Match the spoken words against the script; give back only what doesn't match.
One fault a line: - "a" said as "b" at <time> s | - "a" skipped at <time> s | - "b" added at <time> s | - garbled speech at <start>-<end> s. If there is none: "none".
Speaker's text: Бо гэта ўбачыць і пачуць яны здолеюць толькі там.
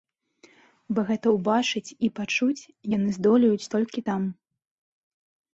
none